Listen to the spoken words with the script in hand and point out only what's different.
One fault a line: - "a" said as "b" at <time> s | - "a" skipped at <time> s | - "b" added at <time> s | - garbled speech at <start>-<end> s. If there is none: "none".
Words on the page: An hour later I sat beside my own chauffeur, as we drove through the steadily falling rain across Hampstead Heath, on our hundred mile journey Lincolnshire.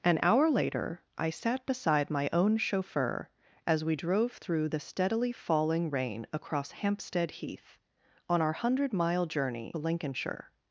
none